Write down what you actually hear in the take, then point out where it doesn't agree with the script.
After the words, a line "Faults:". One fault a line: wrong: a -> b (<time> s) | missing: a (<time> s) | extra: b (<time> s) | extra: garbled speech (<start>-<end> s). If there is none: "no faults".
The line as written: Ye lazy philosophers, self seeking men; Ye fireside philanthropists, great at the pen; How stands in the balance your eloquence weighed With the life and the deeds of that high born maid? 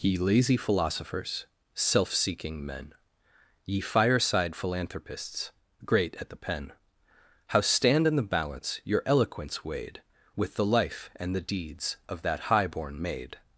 Ye lazy philosophers, self seeking men; Ye fireside philanthropists, great at the pen; How stand in the balance your eloquence weighed With the life and the deeds of that high born maid?
Faults:
wrong: stands -> stand (7.6 s)